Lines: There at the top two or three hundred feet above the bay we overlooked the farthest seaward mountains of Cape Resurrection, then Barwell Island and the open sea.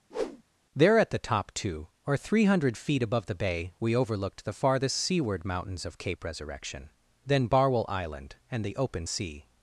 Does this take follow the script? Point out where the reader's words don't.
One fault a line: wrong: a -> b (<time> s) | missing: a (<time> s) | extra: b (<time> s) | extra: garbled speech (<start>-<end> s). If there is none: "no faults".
no faults